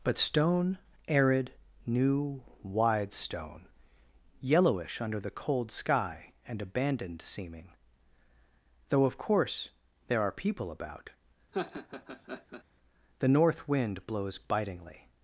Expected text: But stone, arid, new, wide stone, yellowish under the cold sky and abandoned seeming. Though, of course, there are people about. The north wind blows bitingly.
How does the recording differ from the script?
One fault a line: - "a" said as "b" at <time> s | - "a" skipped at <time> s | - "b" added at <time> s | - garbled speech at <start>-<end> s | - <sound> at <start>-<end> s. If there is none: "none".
- laugh at 11.5-12.6 s